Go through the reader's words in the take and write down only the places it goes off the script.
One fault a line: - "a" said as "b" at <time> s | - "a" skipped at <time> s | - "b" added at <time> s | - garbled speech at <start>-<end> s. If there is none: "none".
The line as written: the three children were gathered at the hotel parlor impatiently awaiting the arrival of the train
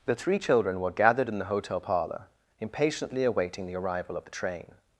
- "at" said as "in" at 1.3 s